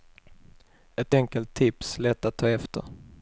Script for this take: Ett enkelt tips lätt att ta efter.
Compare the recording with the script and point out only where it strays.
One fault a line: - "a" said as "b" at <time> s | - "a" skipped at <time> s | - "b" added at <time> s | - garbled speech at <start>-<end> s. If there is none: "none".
none